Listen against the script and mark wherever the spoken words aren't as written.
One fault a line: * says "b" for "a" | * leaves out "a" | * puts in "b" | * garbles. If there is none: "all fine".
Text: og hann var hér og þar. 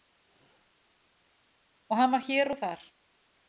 all fine